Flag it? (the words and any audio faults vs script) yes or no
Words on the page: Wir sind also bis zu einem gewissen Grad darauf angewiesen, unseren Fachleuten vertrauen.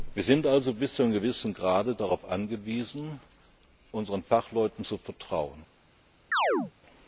yes